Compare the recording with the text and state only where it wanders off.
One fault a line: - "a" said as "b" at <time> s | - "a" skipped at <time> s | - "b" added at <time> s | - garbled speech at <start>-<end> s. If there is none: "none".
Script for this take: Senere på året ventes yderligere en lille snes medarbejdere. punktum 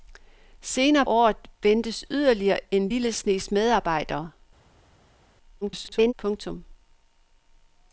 - "på" skipped at 1.1 s
- garbled speech at 5.6-6.1 s